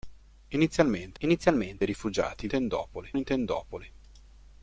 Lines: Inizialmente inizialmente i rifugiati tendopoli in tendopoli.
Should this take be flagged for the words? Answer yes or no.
no